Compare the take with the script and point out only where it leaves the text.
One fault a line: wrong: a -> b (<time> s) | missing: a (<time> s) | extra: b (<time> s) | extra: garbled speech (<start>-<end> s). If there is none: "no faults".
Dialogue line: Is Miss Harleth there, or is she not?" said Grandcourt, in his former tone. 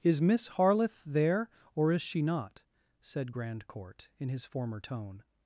no faults